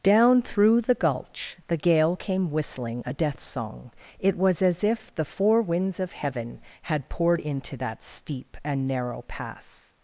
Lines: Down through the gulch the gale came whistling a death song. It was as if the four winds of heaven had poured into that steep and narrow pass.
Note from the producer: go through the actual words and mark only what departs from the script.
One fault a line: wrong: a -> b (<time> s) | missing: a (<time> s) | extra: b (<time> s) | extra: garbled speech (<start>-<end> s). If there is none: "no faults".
no faults